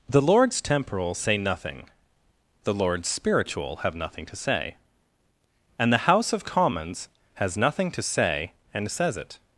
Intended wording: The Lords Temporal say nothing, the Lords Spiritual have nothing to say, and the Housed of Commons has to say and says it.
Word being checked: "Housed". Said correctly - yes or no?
no